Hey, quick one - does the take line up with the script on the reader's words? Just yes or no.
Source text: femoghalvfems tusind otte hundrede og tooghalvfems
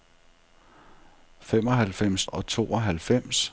no